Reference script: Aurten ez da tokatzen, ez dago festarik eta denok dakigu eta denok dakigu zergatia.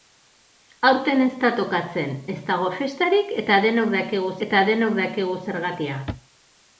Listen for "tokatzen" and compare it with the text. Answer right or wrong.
right